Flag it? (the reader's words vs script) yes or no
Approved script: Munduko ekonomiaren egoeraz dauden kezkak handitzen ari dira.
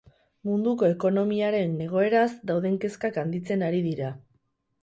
no